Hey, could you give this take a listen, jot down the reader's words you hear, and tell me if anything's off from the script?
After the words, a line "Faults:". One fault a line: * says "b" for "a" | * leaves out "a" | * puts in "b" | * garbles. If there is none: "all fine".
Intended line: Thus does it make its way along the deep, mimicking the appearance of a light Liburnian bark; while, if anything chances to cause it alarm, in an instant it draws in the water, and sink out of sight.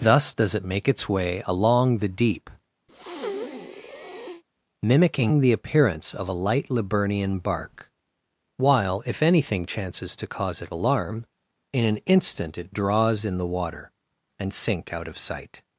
Thus does it make its way along the deep, mimicking the appearance of a light Liburnian bark; while, if anything chances to cause it alarm, in an instant it draws in the water, and sink out of sight.
Faults:
all fine